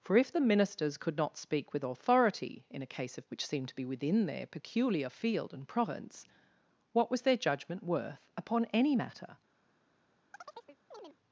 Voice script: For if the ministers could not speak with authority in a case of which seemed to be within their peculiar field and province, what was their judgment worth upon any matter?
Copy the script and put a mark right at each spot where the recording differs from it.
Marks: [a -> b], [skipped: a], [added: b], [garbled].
For if the ministers could not speak with authority in a case of which seemed to be within their peculiar field and province, what was their judgment worth upon any matter?